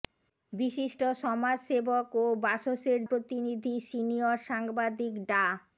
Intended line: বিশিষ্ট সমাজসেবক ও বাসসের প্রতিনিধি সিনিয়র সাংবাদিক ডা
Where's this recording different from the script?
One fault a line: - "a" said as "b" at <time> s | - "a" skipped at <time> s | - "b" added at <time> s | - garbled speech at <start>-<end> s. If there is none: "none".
none